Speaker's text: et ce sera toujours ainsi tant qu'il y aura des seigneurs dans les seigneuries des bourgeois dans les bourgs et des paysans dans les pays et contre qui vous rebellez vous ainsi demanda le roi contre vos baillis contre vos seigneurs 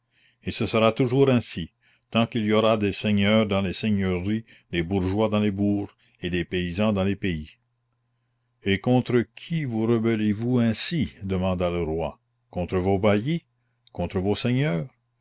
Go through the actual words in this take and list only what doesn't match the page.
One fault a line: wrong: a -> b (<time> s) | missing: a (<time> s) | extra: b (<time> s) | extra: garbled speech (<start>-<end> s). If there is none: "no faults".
no faults